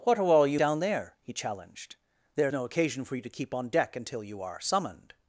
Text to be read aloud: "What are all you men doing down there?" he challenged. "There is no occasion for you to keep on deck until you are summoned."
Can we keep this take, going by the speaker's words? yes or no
no